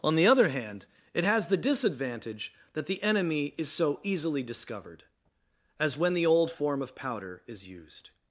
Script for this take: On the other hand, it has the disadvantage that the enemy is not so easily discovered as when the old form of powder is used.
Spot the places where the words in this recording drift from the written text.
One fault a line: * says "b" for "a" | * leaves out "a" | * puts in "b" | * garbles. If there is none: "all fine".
* leaves out "not"